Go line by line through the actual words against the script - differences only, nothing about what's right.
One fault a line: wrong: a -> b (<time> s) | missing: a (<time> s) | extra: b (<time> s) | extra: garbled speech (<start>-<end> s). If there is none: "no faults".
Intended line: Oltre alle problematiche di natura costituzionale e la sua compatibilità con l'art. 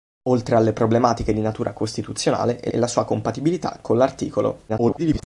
extra: e (2.7 s)
extra: garbled speech (4.7-5.2 s)